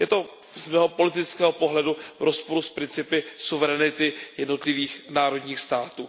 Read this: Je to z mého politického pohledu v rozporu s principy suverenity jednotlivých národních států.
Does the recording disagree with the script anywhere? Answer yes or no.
no